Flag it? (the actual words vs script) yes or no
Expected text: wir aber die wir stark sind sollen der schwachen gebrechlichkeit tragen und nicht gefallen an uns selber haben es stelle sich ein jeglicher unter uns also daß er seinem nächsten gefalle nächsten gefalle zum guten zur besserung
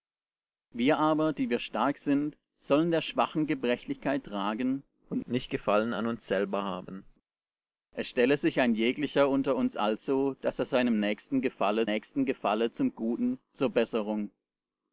no